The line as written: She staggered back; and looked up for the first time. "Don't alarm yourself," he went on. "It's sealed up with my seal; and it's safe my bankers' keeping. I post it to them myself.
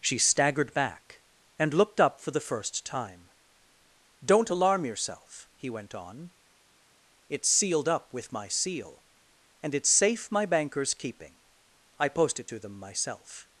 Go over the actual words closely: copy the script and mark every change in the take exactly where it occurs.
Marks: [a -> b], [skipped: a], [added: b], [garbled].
She staggered back; and looked up for the first time. "Don't alarm yourself," he went on. "It's sealed up with my seal; and it's safe my bankers' keeping. I post it to them myself.